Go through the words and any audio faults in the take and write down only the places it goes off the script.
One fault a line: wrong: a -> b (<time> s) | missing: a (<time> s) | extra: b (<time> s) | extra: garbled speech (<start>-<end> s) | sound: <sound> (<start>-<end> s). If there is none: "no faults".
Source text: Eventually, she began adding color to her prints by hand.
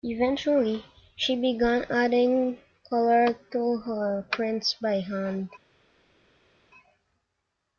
no faults